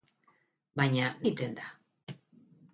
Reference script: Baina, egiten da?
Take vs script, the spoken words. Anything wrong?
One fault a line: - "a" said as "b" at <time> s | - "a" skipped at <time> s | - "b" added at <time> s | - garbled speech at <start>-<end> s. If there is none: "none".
none